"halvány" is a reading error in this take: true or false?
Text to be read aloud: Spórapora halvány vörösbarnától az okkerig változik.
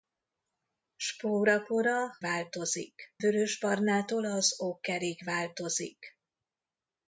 true